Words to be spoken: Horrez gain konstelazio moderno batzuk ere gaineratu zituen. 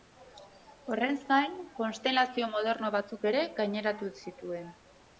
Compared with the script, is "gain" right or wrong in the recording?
right